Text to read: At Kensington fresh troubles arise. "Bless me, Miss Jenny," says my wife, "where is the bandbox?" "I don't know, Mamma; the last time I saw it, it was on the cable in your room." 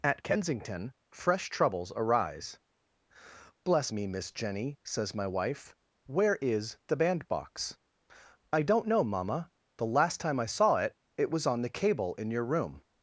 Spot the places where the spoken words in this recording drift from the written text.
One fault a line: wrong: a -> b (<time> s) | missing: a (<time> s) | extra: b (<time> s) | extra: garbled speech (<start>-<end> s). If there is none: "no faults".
no faults